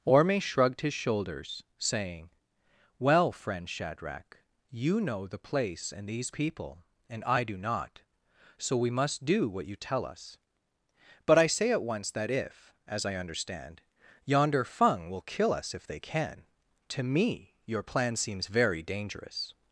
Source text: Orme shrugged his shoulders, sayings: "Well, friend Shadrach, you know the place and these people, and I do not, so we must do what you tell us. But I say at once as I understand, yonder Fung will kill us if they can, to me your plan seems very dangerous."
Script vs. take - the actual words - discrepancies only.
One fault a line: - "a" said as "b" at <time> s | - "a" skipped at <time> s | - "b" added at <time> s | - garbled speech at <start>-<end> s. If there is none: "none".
- "sayings" said as "saying" at 1.8 s
- "that if" added at 12.1 s